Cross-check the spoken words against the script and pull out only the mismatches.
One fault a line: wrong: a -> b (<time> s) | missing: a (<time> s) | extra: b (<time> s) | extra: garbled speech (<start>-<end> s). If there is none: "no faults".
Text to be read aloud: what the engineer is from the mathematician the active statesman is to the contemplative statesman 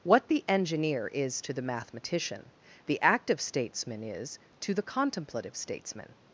wrong: from -> to (1.4 s)